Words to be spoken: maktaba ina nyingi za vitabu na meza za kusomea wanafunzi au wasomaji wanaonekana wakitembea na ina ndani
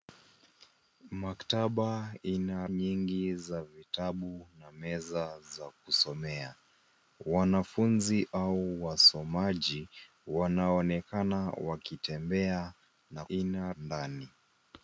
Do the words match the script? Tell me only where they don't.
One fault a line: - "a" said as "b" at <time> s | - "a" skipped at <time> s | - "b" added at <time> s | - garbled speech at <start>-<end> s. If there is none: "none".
none